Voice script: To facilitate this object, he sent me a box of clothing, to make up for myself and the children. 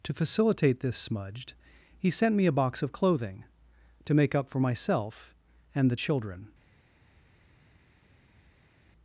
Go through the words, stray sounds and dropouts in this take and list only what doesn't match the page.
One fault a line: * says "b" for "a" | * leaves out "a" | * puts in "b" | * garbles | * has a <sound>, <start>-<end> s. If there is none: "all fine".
* says "smudged" for "object"